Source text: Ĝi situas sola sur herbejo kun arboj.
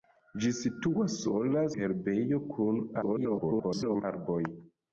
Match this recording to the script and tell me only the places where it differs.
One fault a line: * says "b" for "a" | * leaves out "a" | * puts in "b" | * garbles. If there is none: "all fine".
* leaves out "sur"
* garbles